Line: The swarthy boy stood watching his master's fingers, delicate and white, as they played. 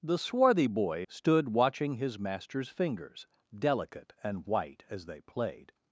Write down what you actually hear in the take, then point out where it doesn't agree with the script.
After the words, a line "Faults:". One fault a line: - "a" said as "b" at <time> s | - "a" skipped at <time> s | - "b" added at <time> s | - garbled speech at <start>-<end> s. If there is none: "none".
The swarthy boy stood watching his master's fingers, delicate and white, as they played.
Faults:
none